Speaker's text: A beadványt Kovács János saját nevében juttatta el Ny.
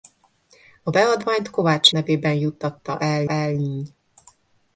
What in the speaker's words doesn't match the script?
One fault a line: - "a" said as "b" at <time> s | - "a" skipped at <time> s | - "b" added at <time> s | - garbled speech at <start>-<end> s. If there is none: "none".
- "János saját" skipped at 1.9 s
- "el" added at 3.3 s